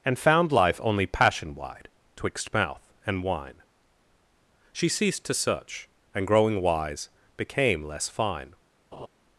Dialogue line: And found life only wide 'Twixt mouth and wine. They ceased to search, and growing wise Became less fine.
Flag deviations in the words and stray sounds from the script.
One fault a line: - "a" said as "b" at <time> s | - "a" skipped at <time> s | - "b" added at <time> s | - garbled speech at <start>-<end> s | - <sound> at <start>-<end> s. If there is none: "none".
- "passion" added at 1.1 s
- "They" said as "She" at 4.7 s
- laugh at 8.9-9.1 s